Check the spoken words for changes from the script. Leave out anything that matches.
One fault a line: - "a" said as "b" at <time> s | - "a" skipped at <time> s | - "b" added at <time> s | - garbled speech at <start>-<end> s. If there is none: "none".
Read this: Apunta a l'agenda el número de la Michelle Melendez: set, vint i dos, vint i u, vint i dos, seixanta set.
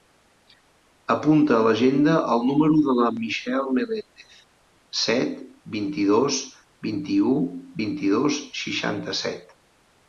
none